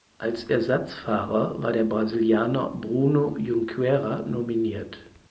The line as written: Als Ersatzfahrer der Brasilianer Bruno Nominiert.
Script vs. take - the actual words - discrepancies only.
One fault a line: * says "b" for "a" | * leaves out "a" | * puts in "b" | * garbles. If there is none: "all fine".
* puts in "war"
* puts in "Junqueira"